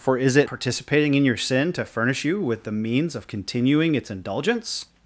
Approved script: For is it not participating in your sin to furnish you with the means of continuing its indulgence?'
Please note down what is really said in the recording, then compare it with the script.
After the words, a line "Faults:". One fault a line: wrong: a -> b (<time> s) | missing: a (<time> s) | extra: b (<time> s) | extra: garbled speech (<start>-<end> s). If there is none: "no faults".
For is it participating in your sin to furnish you with the means of continuing its indulgence?'
Faults:
missing: not (0.5 s)